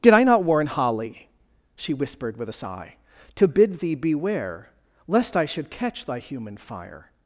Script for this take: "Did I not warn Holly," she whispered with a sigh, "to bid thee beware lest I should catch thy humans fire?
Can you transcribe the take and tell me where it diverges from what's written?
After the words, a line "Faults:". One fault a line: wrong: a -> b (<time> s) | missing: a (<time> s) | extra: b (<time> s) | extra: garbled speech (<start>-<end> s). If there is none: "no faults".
"Did I not warn Holly," she whispered with a sigh, "to bid thee beware lest I should catch thy human fire?
Faults:
wrong: humans -> human (6.2 s)